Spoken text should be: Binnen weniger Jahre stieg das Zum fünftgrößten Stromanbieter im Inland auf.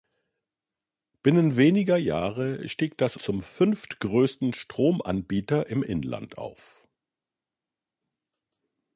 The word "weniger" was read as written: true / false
true